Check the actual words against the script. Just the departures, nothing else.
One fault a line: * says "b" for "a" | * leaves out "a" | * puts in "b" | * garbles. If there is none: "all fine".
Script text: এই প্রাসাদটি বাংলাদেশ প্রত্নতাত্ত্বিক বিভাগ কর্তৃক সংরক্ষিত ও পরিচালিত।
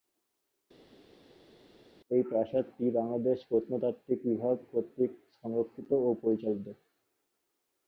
all fine